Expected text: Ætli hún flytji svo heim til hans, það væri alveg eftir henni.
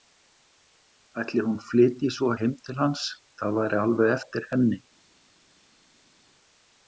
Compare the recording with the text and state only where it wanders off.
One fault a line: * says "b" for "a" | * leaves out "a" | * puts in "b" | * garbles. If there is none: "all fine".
all fine